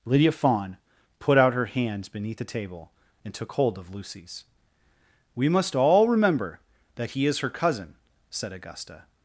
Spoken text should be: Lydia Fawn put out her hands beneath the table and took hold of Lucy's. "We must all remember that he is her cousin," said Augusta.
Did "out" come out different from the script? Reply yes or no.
no